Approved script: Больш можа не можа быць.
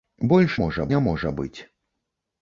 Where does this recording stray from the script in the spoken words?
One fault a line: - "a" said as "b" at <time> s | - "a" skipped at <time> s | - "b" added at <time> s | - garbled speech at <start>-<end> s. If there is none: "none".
none